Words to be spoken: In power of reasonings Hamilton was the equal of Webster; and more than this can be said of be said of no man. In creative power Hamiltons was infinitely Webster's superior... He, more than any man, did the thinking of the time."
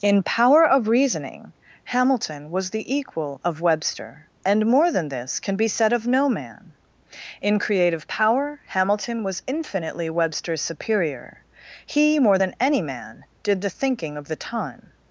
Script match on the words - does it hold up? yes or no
no